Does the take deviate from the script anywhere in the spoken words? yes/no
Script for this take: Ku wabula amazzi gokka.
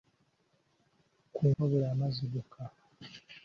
no